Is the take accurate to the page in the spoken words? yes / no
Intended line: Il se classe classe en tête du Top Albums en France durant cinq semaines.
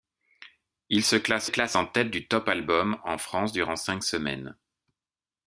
yes